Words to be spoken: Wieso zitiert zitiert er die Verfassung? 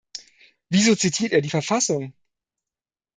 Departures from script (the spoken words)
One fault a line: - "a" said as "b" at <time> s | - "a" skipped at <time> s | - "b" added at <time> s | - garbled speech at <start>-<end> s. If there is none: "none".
- "zitiert" skipped at 1.3 s